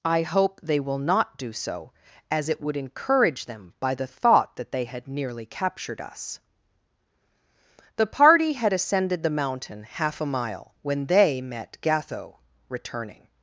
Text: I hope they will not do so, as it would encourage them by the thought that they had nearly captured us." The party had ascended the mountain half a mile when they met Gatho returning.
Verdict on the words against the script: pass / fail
pass